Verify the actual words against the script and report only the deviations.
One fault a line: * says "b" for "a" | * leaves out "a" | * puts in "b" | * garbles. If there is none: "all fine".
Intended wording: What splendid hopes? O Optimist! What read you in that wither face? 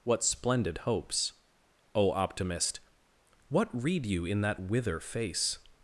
all fine